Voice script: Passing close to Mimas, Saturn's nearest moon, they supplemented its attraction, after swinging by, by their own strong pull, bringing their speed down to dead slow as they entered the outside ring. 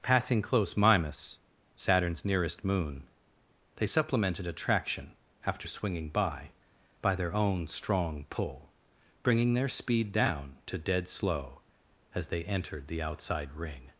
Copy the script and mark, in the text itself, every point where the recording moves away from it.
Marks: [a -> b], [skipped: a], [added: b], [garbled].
Passing close [skipped: to] Mimas, Saturn's nearest moon, they supplemented [skipped: its] attraction, after swinging by, by their own strong pull, bringing their speed down to dead slow as they entered the outside ring.